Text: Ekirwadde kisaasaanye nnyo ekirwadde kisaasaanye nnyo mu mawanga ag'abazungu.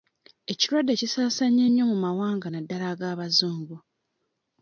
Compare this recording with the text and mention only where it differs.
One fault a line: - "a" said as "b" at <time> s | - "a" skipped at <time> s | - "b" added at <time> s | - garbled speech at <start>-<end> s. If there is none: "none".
- "ekirwadde kisaasaanye nnyo" skipped at 1.8 s
- "naddala" added at 2.5 s